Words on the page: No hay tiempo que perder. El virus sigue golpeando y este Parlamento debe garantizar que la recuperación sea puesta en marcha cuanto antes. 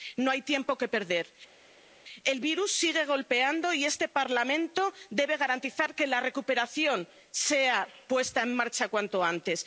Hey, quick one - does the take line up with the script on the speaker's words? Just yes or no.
yes